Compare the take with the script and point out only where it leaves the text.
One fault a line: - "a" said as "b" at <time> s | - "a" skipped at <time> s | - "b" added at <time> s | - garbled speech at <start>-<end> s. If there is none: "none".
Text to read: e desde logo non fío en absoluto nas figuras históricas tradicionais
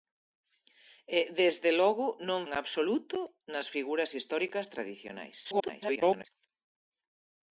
- "fío" skipped at 2.4 s
- garbled speech at 5.4-6.3 s